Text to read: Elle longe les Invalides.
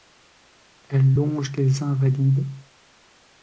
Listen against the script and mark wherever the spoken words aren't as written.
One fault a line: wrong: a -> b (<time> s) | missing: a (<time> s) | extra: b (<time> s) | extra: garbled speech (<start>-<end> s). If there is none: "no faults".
no faults